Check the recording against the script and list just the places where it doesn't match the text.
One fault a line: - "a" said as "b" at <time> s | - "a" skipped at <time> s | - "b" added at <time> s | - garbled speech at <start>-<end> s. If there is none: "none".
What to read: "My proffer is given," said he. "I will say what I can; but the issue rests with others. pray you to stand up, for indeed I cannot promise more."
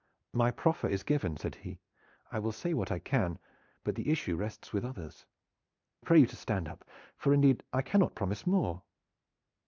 none